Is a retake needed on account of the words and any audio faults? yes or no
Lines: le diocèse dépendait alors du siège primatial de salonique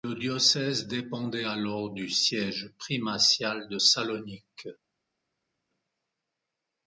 no